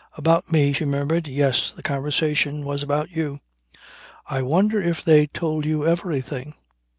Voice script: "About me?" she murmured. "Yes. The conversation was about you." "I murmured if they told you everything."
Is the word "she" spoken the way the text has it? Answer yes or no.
yes